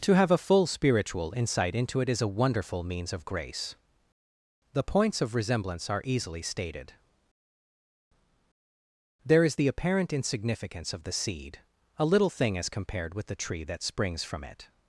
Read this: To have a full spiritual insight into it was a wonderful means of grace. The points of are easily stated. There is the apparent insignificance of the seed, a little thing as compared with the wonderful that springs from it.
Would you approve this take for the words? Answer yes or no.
no